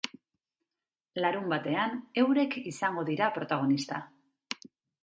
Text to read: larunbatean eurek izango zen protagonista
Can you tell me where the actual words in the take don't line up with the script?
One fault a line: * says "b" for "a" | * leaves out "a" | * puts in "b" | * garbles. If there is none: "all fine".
* says "dira" for "zen"